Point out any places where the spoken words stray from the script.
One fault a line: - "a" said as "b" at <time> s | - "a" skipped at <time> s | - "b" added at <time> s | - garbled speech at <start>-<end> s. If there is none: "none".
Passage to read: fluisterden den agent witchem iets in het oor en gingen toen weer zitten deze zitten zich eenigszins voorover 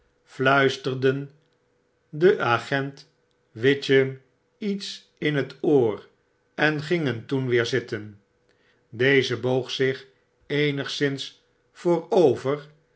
- "zitten" said as "boog" at 9.4 s